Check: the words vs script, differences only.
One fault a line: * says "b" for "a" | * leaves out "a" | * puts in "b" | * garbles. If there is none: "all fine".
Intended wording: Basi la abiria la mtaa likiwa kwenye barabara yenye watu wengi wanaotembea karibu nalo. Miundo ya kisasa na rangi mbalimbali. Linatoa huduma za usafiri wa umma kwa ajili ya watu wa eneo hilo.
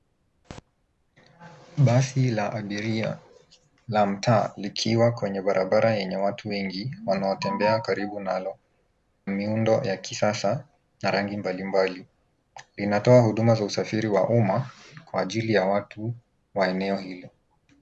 all fine